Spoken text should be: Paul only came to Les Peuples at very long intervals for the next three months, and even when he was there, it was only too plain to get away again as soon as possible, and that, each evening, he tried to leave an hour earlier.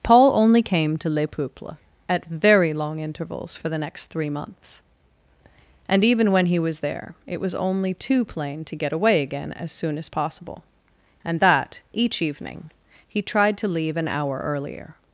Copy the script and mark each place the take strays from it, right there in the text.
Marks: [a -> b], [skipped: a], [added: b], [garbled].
Paul only came to Les Peuples at very long intervals for the next three months, and even when he was there, it was only too plain to get away again as soon as possible, and that, each evening, he tried to leave an hour earlier.